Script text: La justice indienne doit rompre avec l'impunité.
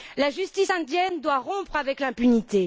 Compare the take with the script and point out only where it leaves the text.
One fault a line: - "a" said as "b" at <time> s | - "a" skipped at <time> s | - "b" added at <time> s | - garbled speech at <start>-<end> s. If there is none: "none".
none